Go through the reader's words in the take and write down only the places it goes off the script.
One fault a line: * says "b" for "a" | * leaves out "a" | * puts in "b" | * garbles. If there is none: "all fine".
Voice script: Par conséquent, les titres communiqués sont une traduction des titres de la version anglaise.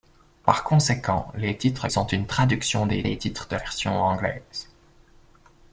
* leaves out "communiqués"
* puts in "des"
* leaves out "la"